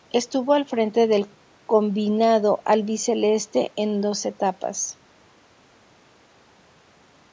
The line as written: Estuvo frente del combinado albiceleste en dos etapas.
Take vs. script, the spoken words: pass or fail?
fail